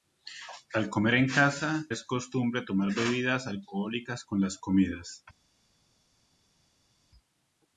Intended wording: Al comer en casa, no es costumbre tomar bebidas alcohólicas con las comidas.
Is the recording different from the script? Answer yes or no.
yes